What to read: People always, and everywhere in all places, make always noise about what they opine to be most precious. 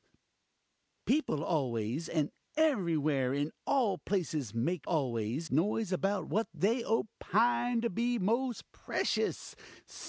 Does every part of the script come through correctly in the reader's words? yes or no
yes